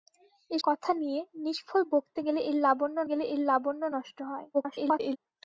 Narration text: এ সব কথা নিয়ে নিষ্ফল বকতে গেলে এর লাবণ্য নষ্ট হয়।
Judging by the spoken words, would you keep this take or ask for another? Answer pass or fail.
fail